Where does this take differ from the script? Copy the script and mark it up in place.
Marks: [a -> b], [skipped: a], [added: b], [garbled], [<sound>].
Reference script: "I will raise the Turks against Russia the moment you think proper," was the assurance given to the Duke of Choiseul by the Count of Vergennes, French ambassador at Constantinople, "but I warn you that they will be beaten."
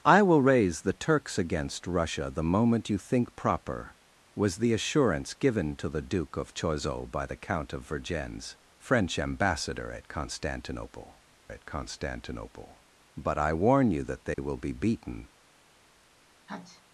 "I will raise the Turks against Russia the moment you think proper," was the assurance given to the Duke of Choiseul by the Count of Vergennes, French ambassador at Constantinople, [added: at Constantinople] "but I warn you that they [dropout] will be beaten." [sneeze]